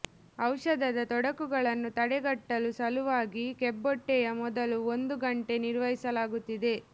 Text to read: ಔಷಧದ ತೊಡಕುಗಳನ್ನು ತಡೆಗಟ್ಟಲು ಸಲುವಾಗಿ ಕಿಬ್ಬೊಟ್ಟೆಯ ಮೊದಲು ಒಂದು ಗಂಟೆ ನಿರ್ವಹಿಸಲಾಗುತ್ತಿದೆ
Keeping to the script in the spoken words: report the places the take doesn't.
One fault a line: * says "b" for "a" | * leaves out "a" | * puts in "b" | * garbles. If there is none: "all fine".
all fine